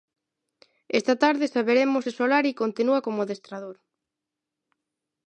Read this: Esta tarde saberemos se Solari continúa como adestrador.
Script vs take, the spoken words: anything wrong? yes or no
no